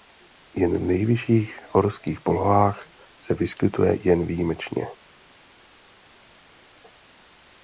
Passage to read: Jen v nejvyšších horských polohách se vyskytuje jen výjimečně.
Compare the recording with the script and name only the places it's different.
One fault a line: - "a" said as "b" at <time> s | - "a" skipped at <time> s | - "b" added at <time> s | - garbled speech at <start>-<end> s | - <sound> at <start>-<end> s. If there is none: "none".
none